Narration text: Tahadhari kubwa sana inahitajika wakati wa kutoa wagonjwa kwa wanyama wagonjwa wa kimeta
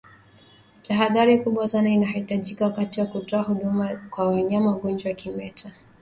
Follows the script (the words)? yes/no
no